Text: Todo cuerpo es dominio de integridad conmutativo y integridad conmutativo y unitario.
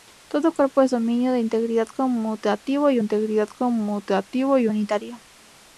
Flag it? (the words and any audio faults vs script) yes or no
no